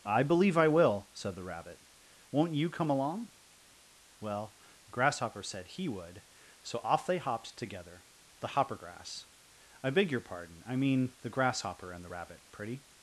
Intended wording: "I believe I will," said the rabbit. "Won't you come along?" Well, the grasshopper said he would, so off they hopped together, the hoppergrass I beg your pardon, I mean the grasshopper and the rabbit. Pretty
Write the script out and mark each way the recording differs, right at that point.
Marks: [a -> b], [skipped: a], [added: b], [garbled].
"I believe I will," said the rabbit. "Won't you come along?" Well, the grasshopper said he would, so off they hopped together, the hoppergrass I beg your pardon, I mean the grasshopper and the rabbit. Pretty